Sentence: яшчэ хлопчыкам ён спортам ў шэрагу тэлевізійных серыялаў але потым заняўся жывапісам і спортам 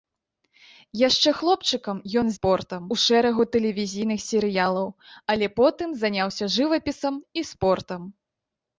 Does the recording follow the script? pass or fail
pass